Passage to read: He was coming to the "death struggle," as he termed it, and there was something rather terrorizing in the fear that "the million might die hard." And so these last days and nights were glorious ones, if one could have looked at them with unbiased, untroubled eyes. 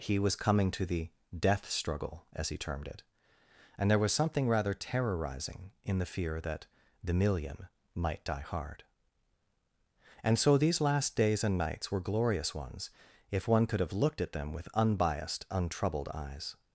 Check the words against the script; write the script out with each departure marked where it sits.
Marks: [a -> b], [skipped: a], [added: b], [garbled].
He was coming to the "death struggle," as he termed it, and there was something rather terrorizing in the fear that "the million might die hard." And so these last days and nights were glorious ones, if one could have looked at them with unbiased, untroubled eyes.